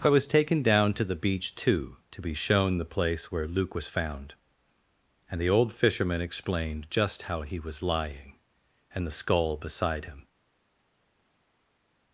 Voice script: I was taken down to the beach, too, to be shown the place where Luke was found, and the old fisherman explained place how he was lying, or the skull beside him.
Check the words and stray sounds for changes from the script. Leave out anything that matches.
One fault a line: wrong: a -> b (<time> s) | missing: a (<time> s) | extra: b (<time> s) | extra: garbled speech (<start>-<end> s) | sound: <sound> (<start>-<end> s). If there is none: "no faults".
wrong: place -> just (6.9 s)
wrong: or -> and (8.9 s)